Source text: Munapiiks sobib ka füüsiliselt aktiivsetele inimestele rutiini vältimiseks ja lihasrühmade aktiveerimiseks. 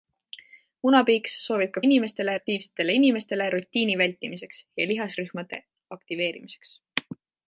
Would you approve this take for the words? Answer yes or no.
no